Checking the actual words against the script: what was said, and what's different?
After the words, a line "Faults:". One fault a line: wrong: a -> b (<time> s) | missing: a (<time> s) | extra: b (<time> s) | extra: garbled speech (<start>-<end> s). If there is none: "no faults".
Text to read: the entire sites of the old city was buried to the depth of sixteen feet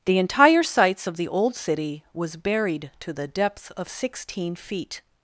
the entire sites of the old city was buried to the depth of sixteen feet
Faults:
no faults